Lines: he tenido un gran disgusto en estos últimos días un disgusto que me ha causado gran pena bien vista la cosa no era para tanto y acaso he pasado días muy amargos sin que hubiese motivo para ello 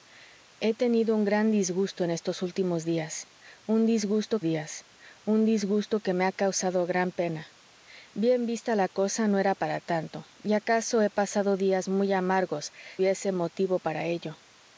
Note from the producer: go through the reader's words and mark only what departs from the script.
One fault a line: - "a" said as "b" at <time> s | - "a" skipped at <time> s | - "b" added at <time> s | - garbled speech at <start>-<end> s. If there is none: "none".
- "días un disgusto" added at 4.4 s
- "sin que" skipped at 12.7 s